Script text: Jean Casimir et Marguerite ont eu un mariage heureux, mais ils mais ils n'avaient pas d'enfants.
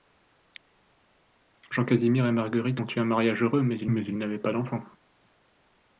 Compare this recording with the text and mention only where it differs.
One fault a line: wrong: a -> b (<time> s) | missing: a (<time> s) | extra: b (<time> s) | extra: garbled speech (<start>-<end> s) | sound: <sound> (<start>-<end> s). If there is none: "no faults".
no faults